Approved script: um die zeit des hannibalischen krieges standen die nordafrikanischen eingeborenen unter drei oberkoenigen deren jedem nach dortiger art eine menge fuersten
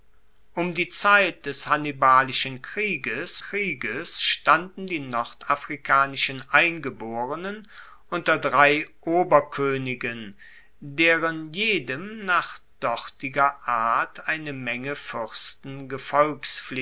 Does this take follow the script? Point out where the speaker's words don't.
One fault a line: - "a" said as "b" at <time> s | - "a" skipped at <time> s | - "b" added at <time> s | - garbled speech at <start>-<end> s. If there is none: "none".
- "krieges" added at 3.4 s